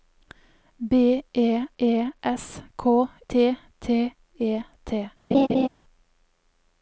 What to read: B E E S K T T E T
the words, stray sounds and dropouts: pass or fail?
fail